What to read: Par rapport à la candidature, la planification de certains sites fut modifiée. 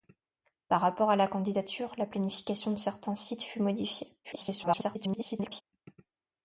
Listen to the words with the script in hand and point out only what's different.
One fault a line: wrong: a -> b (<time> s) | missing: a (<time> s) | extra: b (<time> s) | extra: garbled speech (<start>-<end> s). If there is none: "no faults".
extra: garbled speech (4.2-5.6 s)